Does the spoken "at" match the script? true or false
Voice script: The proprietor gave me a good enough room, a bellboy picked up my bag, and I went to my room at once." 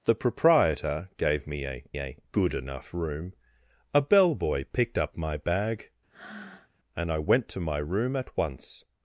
true